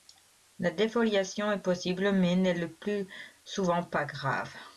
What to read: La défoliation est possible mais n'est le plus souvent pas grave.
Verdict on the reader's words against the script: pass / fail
pass